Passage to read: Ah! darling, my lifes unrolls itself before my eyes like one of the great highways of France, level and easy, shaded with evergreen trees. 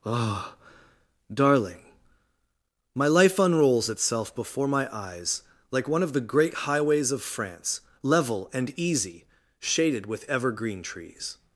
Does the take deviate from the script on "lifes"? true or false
true